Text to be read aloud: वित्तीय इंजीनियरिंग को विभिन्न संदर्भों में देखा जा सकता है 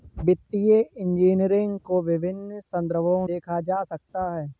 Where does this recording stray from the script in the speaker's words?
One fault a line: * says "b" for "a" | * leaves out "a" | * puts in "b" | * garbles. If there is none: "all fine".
* leaves out "में"